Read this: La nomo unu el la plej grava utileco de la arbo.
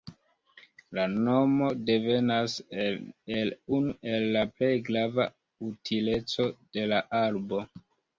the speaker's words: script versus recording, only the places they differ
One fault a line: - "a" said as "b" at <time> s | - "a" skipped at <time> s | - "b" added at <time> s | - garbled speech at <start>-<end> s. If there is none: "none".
- "devenas el" added at 1.9 s